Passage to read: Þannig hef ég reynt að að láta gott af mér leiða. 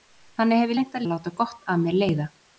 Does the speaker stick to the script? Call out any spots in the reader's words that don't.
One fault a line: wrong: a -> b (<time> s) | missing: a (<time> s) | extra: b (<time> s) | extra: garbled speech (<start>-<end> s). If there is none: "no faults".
no faults